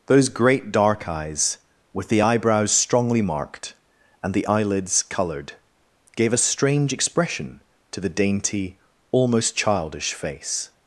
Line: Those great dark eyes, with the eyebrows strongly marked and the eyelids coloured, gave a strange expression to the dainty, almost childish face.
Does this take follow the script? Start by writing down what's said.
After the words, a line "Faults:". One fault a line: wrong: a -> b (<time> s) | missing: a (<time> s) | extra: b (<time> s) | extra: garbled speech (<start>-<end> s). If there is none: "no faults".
Those great dark eyes, with the eyebrows strongly marked and the eyelids coloured, gave a strange expression to the dainty, almost childish face.
Faults:
no faults